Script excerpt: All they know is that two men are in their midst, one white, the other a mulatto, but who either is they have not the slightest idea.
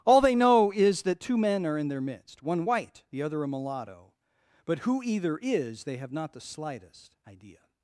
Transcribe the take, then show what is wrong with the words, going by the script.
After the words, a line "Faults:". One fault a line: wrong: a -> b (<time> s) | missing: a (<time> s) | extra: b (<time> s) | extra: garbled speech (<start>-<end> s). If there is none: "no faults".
All they know is that two men are in their midst, one white, the other a mulatto, but who either is they have not the slightest idea.
Faults:
no faults